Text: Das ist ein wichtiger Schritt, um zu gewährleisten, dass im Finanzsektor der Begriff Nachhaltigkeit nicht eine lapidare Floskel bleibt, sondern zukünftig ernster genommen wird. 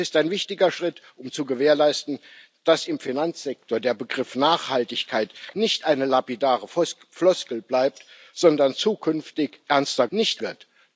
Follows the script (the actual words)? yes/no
no